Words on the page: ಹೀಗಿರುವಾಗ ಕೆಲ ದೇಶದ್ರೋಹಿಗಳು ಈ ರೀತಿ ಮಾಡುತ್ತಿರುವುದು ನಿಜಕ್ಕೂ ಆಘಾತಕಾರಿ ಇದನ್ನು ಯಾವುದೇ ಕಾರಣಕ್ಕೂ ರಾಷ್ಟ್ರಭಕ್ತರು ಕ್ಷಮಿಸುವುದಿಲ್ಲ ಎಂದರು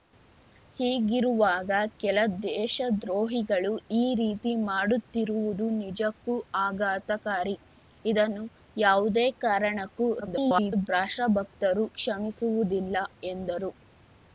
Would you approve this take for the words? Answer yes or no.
no